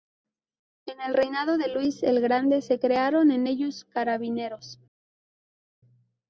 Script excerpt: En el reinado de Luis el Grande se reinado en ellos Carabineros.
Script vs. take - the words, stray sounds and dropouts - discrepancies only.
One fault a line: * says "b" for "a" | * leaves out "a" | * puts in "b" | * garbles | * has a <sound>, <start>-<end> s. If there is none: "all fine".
* says "crearon" for "reinado"